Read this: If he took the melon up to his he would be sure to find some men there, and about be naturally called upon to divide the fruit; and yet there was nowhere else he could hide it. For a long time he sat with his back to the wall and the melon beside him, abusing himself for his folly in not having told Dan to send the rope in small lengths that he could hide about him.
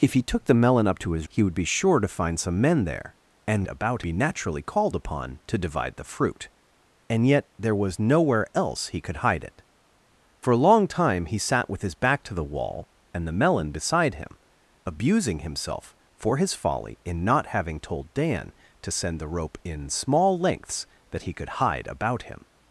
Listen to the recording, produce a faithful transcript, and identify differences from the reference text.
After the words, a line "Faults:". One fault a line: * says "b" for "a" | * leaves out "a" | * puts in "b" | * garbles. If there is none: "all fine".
If he took the melon up to his he would be sure to find some men there, and about be naturally called upon to divide the fruit; and yet there was nowhere else he could hide it. For a long time he sat with his back to the wall and the melon beside him, abusing himself for his folly in not having told Dan to send the rope in small lengths that he could hide about him.
Faults:
all fine